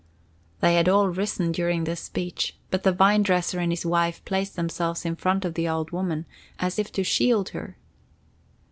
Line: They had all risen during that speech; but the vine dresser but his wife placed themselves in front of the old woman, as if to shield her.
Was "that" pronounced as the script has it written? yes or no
no